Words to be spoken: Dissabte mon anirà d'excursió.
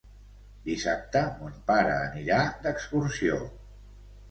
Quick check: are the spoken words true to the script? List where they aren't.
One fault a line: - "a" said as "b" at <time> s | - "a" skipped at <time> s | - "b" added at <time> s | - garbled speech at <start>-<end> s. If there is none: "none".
- "pare" added at 1.7 s